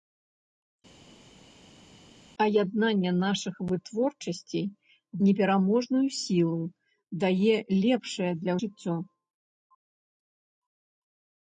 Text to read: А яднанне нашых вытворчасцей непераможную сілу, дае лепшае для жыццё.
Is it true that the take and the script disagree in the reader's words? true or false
false